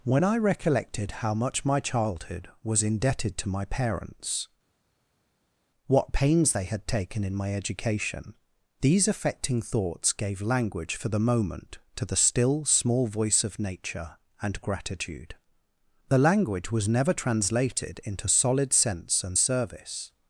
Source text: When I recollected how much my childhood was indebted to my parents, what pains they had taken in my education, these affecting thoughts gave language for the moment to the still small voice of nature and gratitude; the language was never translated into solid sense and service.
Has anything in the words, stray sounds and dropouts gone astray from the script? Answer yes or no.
no